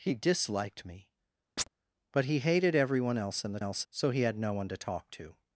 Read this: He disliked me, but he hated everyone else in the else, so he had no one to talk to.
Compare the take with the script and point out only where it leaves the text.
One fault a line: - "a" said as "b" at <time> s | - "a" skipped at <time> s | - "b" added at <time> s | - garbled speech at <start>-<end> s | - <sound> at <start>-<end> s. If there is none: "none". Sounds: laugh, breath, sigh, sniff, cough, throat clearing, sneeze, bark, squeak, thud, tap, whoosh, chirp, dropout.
- chirp at 1.6-1.7 s